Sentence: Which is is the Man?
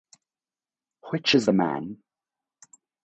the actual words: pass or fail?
fail